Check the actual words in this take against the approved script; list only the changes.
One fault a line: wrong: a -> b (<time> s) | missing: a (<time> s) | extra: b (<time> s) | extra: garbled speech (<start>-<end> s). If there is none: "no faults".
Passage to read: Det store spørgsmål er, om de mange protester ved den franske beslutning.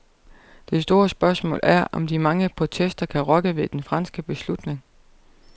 extra: kan rokke (3.1 s)